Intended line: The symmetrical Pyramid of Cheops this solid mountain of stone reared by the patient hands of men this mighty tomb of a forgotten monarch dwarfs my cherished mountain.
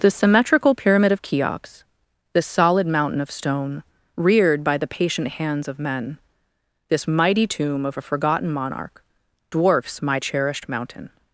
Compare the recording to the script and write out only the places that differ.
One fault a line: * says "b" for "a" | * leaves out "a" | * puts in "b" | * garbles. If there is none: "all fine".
all fine